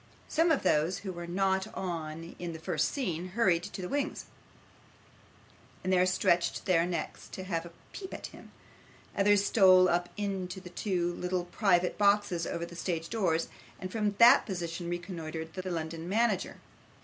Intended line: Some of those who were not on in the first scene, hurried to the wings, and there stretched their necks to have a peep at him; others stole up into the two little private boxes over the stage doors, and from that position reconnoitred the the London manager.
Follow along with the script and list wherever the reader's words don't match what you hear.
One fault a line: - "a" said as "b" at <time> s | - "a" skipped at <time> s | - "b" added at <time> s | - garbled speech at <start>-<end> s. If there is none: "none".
none